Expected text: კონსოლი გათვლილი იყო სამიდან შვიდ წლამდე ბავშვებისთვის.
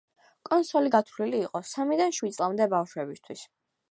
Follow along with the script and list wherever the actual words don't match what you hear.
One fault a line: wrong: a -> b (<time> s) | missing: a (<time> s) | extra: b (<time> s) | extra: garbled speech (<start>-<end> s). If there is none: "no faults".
no faults